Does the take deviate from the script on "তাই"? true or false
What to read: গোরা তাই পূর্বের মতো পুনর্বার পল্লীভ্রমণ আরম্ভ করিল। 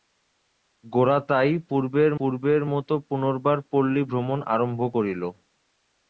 false